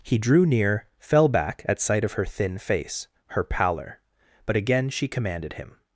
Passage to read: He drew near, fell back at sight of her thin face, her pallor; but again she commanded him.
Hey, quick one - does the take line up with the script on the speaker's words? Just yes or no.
yes